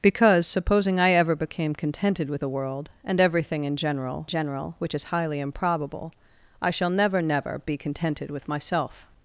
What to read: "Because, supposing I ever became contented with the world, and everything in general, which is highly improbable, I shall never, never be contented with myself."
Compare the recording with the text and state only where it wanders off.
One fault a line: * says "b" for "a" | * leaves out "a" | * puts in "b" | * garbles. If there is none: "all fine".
* puts in "general"